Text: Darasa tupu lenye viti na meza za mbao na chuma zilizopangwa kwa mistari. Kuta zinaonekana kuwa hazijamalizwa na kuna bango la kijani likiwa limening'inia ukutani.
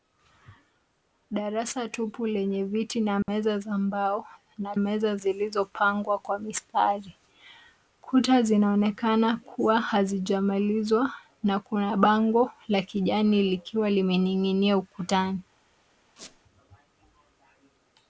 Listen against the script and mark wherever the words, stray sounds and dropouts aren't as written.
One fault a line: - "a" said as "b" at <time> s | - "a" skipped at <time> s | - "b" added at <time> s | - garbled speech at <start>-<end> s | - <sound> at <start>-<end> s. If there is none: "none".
- dropout at 3.2-3.3 s
- "chuma" said as "meza" at 4.8 s
- squeak at 16.2-16.4 s